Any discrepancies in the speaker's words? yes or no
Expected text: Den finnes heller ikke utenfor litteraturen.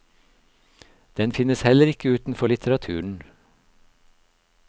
no